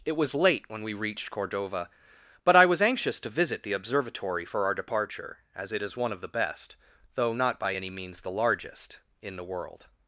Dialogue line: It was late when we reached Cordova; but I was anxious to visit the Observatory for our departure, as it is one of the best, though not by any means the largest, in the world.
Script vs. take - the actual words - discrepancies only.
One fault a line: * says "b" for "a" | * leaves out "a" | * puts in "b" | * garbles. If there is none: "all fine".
all fine